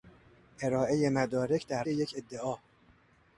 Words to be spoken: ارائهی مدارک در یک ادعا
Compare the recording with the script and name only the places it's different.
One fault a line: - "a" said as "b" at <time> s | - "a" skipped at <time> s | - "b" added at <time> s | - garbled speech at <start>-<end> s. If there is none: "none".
none